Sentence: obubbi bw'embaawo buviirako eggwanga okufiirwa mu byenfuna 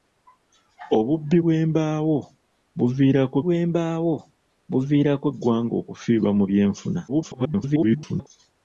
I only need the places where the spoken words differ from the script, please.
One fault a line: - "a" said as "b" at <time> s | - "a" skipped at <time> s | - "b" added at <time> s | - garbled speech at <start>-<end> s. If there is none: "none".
- "bw'embaawo buviirako" added at 3.4 s
- garbled speech at 7.1-8.3 s